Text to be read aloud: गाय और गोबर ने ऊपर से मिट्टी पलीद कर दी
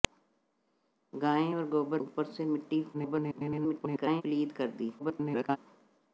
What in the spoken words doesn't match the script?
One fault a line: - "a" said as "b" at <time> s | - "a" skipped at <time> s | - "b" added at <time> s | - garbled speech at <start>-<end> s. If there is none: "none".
- "ने" skipped at 2.0 s
- garbled speech at 2.9-4.2 s
- garbled speech at 5.0-5.6 s